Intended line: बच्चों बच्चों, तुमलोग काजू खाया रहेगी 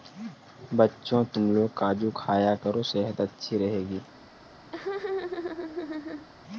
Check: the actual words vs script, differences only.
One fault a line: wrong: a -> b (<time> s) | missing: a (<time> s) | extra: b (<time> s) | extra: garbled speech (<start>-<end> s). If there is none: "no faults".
missing: बच्चों (1.2 s)
extra: करो सेहत अच्छी (2.6 s)